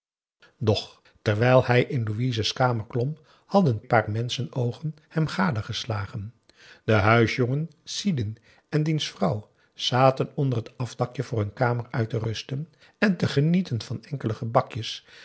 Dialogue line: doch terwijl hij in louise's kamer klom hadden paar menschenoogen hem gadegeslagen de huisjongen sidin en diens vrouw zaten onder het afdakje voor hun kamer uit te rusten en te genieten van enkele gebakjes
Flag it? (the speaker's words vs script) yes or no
no